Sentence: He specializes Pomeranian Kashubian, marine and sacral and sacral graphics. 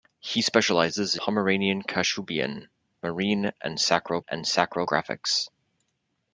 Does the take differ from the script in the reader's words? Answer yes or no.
no